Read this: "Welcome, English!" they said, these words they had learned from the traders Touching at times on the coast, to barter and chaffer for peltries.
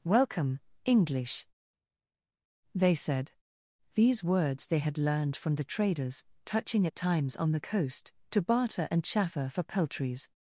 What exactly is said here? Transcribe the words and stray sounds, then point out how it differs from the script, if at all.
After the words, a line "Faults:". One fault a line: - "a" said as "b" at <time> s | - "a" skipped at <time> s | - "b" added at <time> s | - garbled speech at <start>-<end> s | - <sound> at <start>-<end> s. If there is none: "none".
"Welcome, English!" they said, these words they had learned from the traders Touching at times on the coast, to barter and chaffer for peltries.
Faults:
none